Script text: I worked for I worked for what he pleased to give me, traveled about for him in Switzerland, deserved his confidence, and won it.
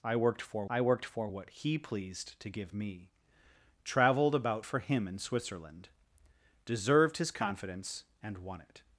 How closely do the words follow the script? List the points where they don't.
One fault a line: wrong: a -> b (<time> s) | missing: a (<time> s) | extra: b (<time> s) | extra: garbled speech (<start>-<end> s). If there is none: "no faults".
no faults